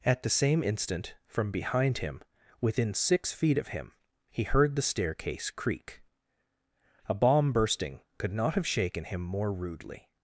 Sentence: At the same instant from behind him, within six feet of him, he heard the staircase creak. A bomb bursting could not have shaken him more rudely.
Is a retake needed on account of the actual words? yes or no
no